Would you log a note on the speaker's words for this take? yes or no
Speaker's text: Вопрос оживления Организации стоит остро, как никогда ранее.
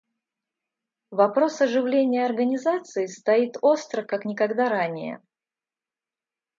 no